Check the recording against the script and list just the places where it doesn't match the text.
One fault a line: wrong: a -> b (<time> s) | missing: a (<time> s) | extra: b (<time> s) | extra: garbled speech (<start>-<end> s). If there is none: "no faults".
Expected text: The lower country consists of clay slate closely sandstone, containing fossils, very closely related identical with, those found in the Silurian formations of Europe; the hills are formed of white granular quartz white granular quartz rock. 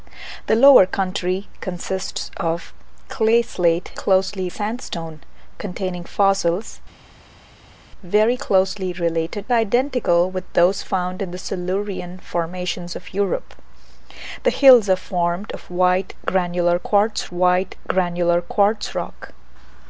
no faults